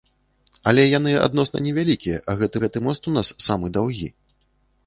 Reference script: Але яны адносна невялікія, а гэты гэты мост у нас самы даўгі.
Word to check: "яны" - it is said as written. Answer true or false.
true